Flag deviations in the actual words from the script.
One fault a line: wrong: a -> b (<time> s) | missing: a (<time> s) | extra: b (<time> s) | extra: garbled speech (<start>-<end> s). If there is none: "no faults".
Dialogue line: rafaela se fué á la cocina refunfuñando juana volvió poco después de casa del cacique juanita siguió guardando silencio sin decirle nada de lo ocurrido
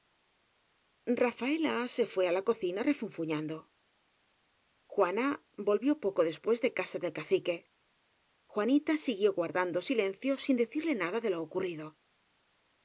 no faults